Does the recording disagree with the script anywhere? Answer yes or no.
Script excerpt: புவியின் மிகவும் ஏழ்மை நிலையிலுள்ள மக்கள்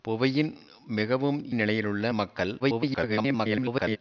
yes